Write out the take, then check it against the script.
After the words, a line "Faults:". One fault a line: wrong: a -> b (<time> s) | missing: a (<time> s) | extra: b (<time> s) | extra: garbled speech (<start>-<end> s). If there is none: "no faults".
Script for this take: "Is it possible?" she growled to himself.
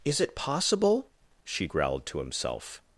"Is it possible?" she growled to himself.
Faults:
no faults